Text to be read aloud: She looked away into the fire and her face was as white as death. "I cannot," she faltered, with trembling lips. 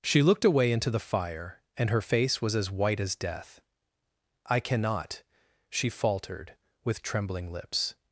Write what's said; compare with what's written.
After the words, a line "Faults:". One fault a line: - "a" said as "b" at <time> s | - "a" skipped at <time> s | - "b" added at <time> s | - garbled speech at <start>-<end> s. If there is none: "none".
She looked away into the fire and her face was as white as death. "I cannot," she faltered, with trembling lips.
Faults:
none